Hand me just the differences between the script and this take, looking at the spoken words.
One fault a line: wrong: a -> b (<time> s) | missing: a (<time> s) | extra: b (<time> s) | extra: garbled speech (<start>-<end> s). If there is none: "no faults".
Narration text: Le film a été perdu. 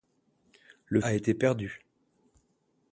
missing: film (1.0 s)